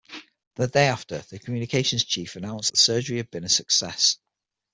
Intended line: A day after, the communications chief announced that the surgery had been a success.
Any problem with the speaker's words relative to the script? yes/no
yes